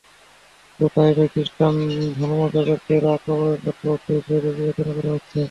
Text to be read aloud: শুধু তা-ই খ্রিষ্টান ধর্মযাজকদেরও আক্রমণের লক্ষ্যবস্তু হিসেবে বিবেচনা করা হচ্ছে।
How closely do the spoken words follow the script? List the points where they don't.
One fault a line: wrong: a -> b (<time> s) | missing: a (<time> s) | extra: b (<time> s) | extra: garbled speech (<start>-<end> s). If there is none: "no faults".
extra: নয় (1.2 s)